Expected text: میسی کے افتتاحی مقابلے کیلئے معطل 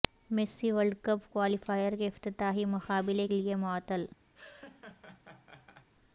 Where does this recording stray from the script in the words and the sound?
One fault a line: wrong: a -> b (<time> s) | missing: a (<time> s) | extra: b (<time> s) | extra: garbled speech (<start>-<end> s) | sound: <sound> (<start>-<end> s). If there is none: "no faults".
extra: ورلڈ کپ کوالیفائر (0.7 s)
sound: laugh (4.3-5.9 s)